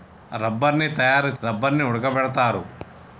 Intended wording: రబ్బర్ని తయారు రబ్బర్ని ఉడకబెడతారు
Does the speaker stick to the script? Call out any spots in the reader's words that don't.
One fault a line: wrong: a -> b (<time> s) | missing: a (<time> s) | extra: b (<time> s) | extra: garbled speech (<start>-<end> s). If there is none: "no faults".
no faults